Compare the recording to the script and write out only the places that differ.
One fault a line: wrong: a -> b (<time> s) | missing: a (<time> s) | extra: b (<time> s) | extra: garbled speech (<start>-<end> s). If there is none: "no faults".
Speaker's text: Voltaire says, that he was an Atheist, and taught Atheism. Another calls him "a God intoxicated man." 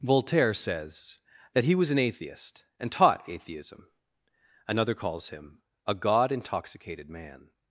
no faults